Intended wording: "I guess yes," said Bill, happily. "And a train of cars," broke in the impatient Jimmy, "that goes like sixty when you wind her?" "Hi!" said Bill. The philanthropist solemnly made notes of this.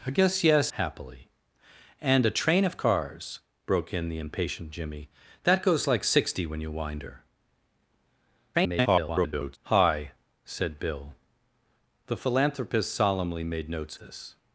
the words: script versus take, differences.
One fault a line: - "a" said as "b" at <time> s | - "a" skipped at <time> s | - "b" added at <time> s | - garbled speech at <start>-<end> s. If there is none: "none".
- "said Bill" skipped at 0.7 s
- garbled speech at 8.5-9.6 s
- "of" skipped at 14.0 s